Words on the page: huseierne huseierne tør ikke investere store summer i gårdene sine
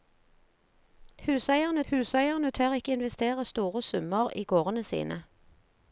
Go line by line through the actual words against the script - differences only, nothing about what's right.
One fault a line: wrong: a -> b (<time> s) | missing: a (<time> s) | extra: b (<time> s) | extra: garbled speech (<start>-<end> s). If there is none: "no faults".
no faults